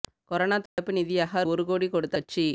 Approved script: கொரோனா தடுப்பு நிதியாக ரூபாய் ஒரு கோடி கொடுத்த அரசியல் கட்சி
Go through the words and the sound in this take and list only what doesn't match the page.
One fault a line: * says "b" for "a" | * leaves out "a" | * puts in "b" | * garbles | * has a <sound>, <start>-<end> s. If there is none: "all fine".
* has a dropout, 0.7-0.8 s
* leaves out "ரூபாய்"
* leaves out "அரசியல்"